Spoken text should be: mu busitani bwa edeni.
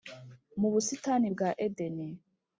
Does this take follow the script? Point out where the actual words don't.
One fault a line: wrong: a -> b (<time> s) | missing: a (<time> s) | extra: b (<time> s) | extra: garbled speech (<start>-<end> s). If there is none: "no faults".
no faults